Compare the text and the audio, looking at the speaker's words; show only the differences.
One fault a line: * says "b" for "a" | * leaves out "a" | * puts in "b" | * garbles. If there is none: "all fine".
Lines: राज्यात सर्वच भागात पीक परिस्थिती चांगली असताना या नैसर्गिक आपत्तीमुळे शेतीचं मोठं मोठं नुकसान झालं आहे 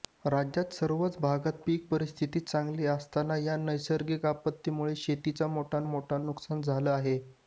all fine